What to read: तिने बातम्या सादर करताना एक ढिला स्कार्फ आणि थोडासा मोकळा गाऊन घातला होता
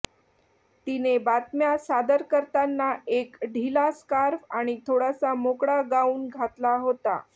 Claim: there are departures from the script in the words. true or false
false